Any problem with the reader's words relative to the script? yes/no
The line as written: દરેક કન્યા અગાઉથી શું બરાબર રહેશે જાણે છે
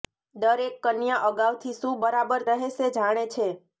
no